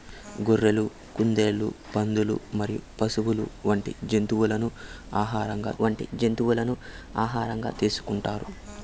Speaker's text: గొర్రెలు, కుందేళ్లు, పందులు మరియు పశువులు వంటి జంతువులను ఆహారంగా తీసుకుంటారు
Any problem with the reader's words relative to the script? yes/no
yes